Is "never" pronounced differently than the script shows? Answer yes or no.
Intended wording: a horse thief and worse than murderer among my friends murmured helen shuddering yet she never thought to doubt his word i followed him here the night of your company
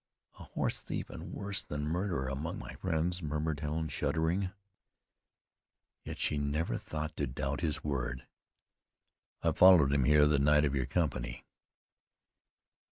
no